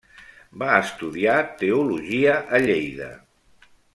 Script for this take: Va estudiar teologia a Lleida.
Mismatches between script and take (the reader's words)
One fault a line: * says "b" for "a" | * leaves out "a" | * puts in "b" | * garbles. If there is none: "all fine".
all fine